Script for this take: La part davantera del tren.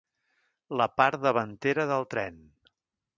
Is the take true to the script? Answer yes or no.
yes